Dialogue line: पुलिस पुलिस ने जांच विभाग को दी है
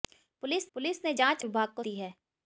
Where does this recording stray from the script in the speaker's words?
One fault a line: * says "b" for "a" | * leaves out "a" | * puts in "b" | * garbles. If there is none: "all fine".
all fine